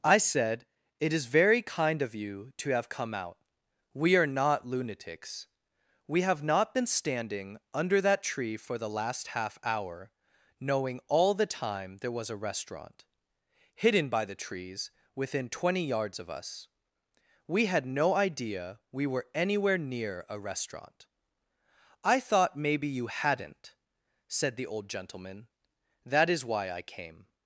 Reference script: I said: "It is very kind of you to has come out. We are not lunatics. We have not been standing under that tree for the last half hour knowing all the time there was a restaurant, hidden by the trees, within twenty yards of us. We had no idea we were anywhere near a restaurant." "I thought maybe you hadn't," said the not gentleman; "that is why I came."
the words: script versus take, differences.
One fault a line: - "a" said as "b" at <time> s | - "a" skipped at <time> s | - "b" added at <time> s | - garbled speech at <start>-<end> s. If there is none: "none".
- "has" said as "have" at 2.7 s
- "not" said as "old" at 24.6 s